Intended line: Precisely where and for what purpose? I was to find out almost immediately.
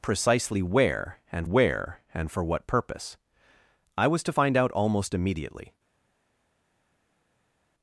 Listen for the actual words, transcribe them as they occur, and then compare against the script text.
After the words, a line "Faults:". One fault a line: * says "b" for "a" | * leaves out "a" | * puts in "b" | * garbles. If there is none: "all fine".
Precisely where and where and for what purpose? I was to find out almost immediately.
Faults:
* puts in "where and"